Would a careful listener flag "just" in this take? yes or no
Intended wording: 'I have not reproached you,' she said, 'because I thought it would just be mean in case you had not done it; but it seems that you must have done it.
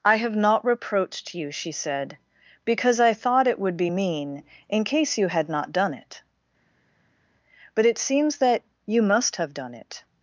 yes